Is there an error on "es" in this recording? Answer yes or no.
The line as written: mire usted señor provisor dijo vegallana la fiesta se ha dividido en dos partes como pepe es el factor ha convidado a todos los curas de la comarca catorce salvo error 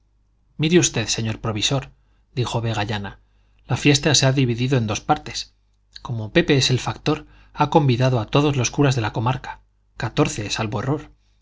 no